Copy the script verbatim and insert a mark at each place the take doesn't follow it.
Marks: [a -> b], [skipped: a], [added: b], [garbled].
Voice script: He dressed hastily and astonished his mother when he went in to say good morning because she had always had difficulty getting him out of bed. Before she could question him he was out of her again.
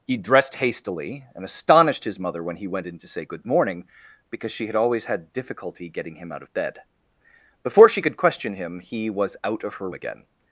He dressed hastily and astonished his mother when he went in to say good morning because she had always had difficulty getting him out of bed. Before she could question him he was out of her again.